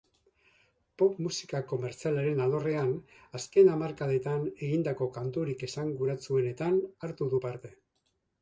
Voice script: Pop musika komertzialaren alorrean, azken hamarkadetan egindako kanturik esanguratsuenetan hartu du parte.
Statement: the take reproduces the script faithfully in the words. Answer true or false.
true